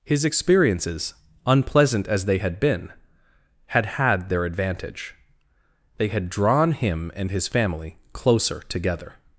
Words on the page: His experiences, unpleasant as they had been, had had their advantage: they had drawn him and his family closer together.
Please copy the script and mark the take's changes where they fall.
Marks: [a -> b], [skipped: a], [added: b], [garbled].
His experiences, unpleasant as they had been, had had their advantage: they had drawn him and his family closer together.